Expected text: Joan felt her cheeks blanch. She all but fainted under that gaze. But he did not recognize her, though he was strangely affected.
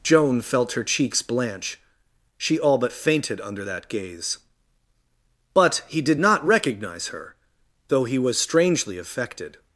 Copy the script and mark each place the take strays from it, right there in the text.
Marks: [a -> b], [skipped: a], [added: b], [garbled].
Joan felt her cheeks blanch. She all but fainted under that gaze. But he did not recognize her, though he was strangely affected.